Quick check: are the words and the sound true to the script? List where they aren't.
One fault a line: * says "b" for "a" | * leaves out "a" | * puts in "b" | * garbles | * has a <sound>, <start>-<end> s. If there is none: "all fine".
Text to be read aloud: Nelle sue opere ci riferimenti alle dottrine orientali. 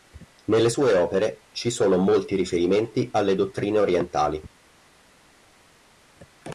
* puts in "sono molti"